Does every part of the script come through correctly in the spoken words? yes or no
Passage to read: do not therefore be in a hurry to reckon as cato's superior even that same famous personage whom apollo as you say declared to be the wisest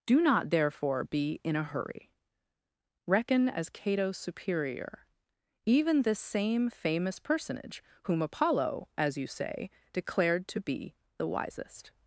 no